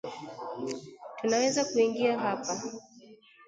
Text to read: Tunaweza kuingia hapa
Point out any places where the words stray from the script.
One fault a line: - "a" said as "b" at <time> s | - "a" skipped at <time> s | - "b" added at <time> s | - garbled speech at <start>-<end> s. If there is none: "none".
none